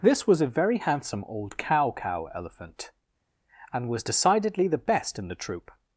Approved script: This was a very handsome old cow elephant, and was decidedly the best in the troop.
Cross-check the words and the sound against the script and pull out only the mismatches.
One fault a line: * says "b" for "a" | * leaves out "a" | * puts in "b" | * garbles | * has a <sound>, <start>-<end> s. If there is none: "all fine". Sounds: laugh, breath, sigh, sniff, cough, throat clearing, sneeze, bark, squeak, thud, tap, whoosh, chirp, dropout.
* puts in "cow"